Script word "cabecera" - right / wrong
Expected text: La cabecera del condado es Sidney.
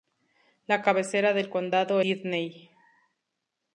right